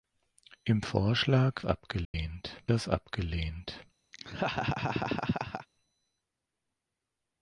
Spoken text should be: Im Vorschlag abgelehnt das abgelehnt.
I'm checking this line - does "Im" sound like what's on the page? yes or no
yes